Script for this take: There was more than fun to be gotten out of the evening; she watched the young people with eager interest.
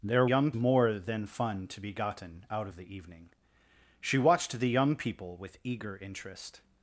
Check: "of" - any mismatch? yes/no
no